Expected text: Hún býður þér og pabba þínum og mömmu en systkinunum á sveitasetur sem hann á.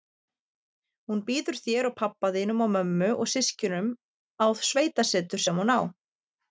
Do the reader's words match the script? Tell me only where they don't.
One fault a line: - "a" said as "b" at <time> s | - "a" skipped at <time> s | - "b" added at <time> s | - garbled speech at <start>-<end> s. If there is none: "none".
- "en" said as "og" at 3.1 s
- "hann" said as "hún" at 5.6 s